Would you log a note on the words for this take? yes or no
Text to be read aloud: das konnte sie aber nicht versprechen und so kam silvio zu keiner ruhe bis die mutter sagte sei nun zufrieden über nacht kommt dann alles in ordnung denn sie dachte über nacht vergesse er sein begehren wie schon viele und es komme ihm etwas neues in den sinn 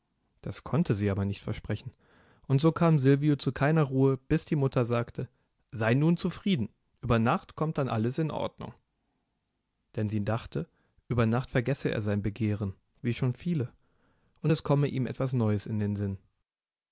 no